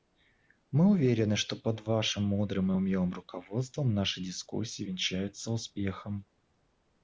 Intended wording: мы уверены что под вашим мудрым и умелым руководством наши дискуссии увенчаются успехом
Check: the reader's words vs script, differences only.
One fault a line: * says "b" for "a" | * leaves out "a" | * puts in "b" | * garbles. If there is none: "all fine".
all fine